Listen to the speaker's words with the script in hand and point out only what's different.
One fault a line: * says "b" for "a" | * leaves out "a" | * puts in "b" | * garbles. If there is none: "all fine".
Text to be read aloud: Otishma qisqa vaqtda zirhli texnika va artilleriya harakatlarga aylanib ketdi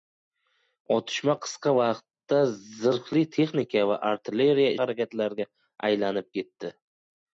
all fine